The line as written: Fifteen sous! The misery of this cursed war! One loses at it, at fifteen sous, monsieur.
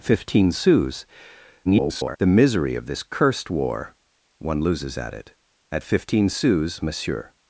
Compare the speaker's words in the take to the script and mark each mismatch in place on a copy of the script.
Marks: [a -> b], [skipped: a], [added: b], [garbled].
Fifteen sous! [garbled] The misery of this cursed war! One loses at it, at fifteen sous, monsieur.